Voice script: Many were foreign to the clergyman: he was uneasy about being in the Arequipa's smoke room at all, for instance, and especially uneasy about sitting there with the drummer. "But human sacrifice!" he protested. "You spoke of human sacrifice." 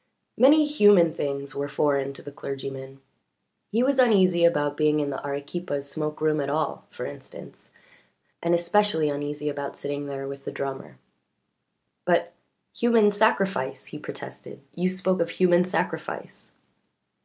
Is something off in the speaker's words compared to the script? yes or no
yes